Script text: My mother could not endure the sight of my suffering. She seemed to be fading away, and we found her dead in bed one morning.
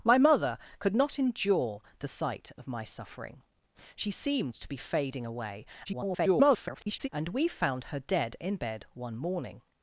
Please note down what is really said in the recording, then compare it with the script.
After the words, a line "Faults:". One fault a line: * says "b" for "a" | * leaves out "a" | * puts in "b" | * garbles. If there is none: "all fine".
My mother could not endure the sight of my suffering. She seemed to be fading away, [garbled] and we found her dead in bed one morning.
Faults:
* garbles